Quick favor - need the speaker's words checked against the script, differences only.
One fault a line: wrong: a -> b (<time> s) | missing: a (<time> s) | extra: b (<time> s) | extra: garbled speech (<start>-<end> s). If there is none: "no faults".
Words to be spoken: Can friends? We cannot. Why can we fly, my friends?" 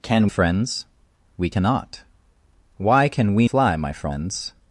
no faults